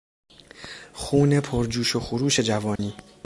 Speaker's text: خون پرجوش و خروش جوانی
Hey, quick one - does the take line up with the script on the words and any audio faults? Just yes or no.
no